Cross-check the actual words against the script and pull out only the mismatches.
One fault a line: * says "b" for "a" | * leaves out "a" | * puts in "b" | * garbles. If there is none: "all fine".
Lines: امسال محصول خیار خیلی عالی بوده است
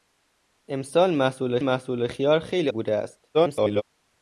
* puts in "محصول"
* leaves out "عالی"
* garbles